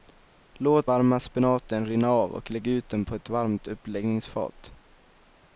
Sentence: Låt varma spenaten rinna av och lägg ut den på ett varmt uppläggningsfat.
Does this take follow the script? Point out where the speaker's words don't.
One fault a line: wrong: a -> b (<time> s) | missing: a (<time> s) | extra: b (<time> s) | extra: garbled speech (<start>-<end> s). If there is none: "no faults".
no faults